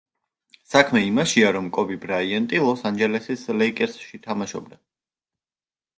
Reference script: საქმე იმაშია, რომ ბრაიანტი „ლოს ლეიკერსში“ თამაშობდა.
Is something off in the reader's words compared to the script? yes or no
yes